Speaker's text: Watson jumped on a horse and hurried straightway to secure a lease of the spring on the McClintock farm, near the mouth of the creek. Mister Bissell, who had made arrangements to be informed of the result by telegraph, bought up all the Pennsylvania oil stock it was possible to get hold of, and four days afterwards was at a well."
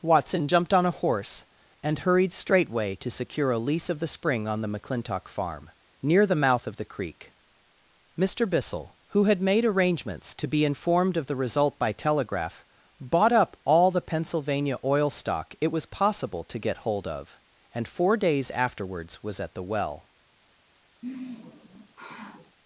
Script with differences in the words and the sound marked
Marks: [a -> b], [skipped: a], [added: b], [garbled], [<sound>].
Watson jumped on a horse and hurried straightway to secure a lease of the spring on the McClintock farm, near the mouth of the creek. Mister Bissell, who had made arrangements to be informed of the result by telegraph, bought up all the Pennsylvania oil stock it was possible to get hold of, and four days afterwards was at [a -> the] well." [sigh]